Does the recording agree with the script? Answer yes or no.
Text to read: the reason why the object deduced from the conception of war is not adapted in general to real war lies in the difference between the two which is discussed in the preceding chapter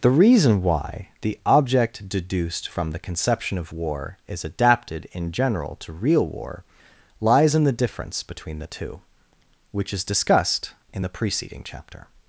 no